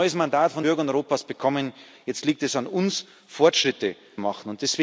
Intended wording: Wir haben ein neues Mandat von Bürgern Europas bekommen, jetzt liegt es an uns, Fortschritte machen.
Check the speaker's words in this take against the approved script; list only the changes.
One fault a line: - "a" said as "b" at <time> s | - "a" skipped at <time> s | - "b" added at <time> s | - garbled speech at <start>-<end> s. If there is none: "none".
none